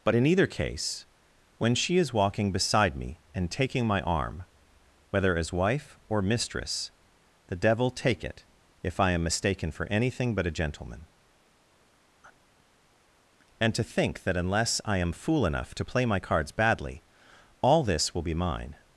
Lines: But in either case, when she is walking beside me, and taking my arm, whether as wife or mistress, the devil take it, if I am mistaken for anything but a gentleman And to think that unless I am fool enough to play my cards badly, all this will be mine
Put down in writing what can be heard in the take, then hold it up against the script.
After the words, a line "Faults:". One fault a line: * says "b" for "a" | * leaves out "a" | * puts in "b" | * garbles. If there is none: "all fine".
But in either case, when she is walking beside me, and taking my arm, whether as wife or mistress, the devil take it, if I am mistaken for anything but a gentleman And to think that unless I am fool enough to play my cards badly, all this will be mine
Faults:
all fine